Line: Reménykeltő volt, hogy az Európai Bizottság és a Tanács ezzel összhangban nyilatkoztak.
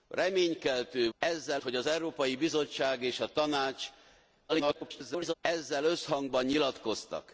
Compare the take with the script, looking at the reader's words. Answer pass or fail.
fail